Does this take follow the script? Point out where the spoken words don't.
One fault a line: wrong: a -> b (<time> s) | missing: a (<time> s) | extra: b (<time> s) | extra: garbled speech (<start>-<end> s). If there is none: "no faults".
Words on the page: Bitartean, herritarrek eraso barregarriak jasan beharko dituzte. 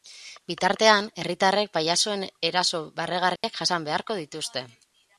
extra: pailazoen (1.8 s)